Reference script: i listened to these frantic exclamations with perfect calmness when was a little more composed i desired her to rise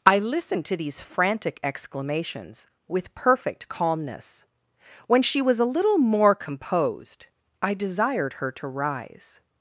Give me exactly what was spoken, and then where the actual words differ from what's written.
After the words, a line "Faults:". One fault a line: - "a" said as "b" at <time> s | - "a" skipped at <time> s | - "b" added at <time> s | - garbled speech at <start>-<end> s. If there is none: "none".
i listened to these frantic exclamations with perfect calmness when she was a little more composed i desired her to rise
Faults:
- "she" added at 5.2 s